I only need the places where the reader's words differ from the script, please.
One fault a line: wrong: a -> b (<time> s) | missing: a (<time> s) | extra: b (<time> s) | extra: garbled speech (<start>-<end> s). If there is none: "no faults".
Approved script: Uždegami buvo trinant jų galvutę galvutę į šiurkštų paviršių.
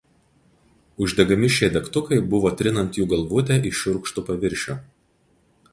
extra: šie degtukai (1.6 s)
missing: galvutę (3.6 s)